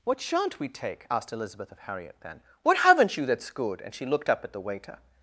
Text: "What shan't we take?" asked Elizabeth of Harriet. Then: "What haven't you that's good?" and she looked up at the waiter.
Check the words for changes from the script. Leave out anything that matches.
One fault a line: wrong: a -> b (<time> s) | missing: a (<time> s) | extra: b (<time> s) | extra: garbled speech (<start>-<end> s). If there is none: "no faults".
no faults